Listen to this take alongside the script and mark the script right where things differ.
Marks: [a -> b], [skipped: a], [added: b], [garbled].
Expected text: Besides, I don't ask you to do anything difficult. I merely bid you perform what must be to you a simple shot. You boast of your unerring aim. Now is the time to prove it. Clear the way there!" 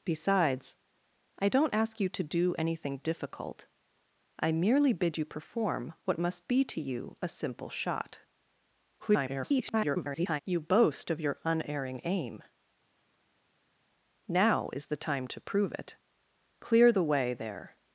Besides, I don't ask you to do anything difficult. I merely bid you perform what must be to you a simple shot. [garbled] You boast of your unerring aim. Now is the time to prove it. Clear the way there!"